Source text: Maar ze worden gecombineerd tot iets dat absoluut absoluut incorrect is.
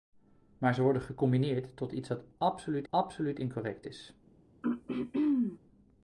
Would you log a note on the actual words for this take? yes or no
no